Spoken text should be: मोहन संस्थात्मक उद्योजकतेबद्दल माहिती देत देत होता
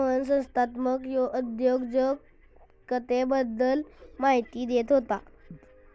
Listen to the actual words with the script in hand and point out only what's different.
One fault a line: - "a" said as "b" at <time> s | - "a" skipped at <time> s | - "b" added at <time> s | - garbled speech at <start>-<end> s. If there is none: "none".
- "देत" skipped at 4.9 s